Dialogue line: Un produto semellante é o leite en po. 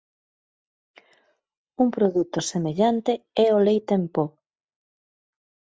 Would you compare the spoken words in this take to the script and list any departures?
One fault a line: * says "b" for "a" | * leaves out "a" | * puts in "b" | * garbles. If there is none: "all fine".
all fine